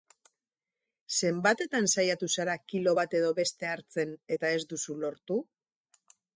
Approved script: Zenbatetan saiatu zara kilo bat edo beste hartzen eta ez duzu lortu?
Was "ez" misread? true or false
false